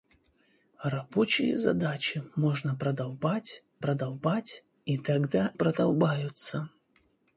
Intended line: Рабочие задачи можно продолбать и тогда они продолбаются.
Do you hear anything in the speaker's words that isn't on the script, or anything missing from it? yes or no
yes